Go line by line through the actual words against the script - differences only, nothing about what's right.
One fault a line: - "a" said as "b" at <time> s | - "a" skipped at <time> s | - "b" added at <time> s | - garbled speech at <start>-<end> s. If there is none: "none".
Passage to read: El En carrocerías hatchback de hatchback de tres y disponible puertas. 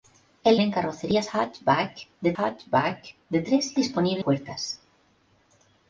none